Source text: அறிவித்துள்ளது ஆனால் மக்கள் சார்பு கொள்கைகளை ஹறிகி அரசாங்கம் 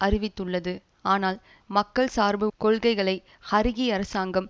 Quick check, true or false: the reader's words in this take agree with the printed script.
true